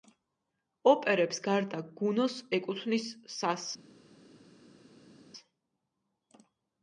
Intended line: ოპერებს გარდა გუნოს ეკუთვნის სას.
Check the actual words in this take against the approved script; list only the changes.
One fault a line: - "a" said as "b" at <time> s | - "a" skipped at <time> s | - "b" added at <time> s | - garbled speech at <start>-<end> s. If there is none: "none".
none